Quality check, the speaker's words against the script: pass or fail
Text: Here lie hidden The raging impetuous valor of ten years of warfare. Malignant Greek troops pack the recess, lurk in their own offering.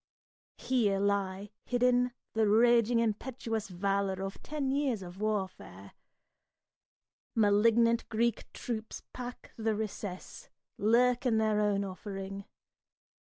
pass